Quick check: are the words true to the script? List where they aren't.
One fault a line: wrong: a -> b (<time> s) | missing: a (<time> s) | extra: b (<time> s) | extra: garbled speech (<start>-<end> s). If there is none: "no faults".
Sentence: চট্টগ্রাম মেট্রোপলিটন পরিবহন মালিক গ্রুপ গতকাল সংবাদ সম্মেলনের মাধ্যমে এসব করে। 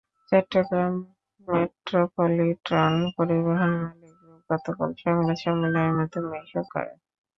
no faults